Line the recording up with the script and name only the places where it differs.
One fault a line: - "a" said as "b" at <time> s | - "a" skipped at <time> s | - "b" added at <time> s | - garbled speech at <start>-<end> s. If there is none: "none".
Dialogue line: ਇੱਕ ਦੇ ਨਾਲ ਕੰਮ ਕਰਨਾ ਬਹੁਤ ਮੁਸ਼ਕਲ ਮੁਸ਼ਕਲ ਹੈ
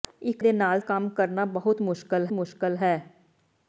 none